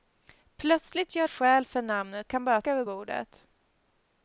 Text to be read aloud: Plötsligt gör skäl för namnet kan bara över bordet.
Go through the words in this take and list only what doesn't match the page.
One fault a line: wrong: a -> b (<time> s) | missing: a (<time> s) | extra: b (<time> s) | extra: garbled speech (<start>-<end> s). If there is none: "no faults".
no faults